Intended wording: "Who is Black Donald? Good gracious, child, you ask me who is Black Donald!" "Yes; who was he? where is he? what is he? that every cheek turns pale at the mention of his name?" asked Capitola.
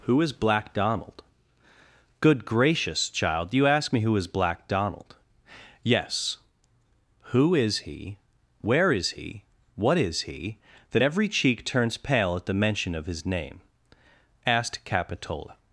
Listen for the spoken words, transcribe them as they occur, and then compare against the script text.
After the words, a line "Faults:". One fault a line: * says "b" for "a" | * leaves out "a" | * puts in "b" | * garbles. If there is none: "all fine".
"Who is Black Donald? Good gracious, child, you ask me who is Black Donald!" "Yes; who is he? where is he? what is he? that every cheek turns pale at the mention of his name?" asked Capitola.
Faults:
* says "is" for "was"